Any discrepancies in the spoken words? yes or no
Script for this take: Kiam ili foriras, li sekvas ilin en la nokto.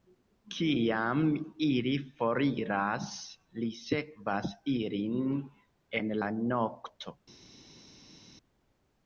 no